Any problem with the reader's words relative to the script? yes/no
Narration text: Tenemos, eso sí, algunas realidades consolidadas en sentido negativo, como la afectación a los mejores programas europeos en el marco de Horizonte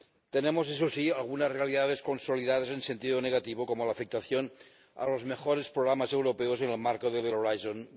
yes